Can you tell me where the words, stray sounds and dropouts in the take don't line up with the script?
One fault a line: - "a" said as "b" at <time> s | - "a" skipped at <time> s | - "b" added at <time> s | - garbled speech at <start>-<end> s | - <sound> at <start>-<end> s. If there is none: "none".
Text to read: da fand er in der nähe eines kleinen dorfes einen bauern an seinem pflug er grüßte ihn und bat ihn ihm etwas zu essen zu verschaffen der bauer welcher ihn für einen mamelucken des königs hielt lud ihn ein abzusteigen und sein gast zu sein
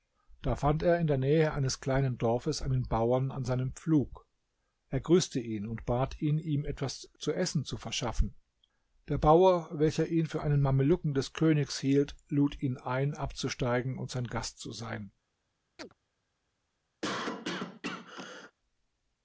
- chirp at 15.8-15.9 s
- cough at 17.0-18.5 s